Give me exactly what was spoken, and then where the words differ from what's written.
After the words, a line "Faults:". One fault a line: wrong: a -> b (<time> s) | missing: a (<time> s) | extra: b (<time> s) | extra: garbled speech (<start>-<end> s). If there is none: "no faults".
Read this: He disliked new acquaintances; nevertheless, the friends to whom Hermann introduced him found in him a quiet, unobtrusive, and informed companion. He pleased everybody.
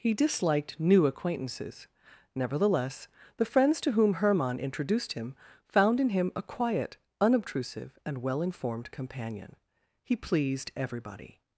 He disliked new acquaintances; nevertheless, the friends to whom Hermann introduced him found in him a quiet, unobtrusive, and well informed companion. He pleased everybody.
Faults:
extra: well (8.2 s)